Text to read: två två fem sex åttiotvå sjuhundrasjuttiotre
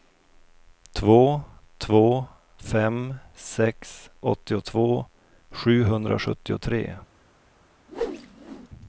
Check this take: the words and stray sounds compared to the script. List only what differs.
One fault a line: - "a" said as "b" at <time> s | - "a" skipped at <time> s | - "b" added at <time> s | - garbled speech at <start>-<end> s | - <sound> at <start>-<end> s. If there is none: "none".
- whoosh at 7.9-8.7 s